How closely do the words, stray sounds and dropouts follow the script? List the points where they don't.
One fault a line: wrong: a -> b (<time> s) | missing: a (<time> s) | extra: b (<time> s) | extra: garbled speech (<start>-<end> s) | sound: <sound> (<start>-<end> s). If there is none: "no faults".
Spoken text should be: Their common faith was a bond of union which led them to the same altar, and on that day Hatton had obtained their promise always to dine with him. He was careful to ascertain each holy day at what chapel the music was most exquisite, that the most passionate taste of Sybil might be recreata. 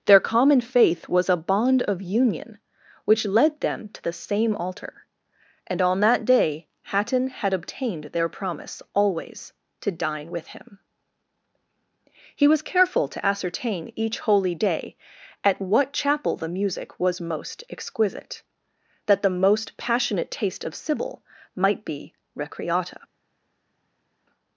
no faults